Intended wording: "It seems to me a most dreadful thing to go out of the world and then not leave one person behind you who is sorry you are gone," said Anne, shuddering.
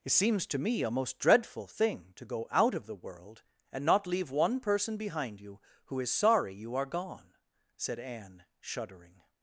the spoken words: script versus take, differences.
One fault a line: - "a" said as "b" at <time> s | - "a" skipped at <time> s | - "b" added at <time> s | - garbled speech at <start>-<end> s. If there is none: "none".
- "then" skipped at 3.9 s